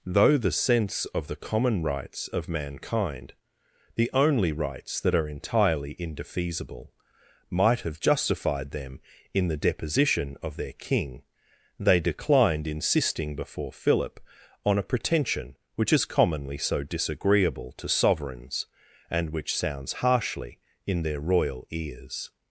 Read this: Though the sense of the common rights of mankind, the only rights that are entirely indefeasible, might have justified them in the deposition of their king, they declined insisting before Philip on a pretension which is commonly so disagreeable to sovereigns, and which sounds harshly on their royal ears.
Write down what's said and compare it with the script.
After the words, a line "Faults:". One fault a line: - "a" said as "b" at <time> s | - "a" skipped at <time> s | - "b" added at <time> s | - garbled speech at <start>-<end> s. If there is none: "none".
Though the sense of the common rights of mankind, the only rights that are entirely indefeasible, might have justified them in the deposition of their king, they declined insisting before Philip on a pretension which is commonly so disagreeable to sovereigns, and which sounds harshly in their royal ears.
Faults:
- "on" said as "in" at 20.9 s